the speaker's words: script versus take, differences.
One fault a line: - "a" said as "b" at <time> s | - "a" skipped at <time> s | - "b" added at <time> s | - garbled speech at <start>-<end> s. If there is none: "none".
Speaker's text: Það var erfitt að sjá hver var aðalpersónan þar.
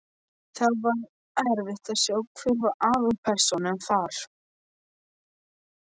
none